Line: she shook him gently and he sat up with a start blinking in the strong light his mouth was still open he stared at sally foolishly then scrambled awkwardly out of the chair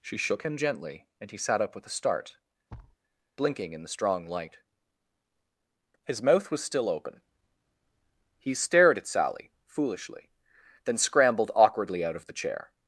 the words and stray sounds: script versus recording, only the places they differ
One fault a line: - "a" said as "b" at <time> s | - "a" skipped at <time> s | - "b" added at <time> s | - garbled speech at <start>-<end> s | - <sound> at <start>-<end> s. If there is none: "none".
- thud at 2.7-3.0 s